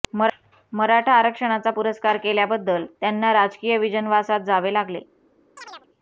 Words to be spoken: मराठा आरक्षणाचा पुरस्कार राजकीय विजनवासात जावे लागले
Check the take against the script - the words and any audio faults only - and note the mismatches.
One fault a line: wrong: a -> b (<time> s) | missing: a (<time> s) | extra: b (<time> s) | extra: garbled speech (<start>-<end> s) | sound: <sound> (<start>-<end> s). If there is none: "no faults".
extra: केल्याबद्दल त्यांना (2.2 s)
sound: chirp (5.6-5.9 s)